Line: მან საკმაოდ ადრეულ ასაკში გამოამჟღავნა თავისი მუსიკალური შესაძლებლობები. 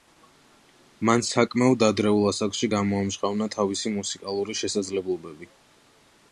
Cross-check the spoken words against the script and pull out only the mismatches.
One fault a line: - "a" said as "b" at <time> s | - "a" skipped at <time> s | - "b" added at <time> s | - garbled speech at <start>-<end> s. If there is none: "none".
none